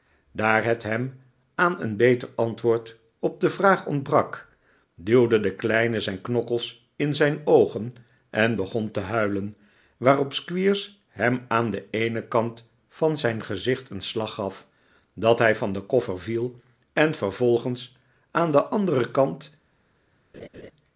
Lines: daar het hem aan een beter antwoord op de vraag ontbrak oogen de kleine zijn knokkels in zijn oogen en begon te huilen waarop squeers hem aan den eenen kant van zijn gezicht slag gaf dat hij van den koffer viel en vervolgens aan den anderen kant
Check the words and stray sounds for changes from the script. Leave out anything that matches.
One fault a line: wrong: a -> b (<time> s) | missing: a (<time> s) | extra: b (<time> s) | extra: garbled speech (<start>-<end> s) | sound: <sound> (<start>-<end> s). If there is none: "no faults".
wrong: oogen -> duwde (5.0 s)
extra: een (13.9 s)
sound: laugh (20.3-20.7 s)